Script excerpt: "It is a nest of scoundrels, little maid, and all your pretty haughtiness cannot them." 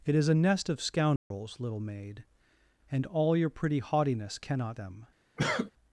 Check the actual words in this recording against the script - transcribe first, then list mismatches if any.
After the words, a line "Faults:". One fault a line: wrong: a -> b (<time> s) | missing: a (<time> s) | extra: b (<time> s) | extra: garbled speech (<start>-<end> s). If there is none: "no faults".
"It is a nest of scoundrels, little maid, and all your pretty haughtiness cannot them."
Faults:
no faults